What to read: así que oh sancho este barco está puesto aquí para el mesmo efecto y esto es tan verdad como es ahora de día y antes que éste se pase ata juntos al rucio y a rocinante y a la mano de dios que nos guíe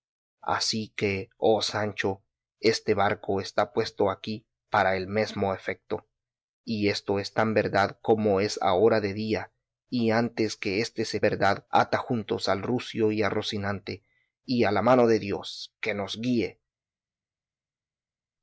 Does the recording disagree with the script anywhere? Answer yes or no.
yes